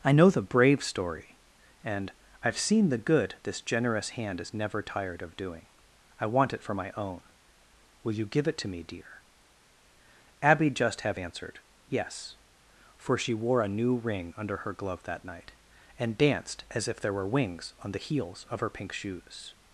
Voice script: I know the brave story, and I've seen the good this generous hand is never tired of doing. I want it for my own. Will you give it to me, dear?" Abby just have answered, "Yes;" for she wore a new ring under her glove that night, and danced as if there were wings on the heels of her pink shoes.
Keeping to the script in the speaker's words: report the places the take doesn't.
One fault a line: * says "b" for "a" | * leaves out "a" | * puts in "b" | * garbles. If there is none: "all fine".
all fine